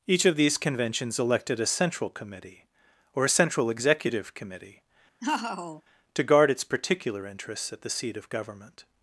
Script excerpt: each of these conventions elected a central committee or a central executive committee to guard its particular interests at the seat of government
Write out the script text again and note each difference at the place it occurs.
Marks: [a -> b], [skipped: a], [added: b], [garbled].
each of these conventions elected a central committee or a central executive committee to guard its particular interests at the seat of government